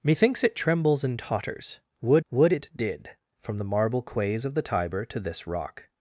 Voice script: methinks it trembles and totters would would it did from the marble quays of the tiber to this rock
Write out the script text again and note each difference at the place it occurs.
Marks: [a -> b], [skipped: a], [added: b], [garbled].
methinks it trembles and totters would would it did from the marble quays of the tiber to this rock